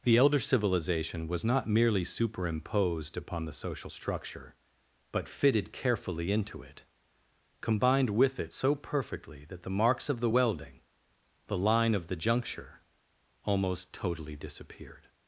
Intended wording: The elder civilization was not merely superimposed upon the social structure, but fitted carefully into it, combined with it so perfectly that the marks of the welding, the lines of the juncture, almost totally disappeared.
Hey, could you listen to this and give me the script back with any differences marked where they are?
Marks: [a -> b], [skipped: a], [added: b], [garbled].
The elder civilization was not merely superimposed upon the social structure, but fitted carefully into it, combined with it so perfectly that the marks of the welding, the [lines -> line] of the juncture, almost totally disappeared.